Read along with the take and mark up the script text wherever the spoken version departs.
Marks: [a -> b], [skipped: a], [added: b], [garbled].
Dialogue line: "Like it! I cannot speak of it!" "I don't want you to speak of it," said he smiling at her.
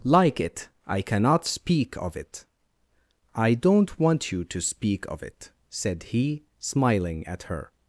"Like it! I cannot speak of it!" "I don't want you to speak of it," said he smiling at her.